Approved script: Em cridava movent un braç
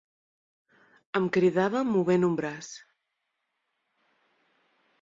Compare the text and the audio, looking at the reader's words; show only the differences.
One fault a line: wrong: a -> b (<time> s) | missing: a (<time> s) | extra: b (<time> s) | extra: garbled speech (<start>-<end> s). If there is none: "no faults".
no faults